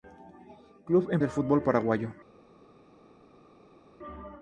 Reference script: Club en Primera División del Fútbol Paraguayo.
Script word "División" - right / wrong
wrong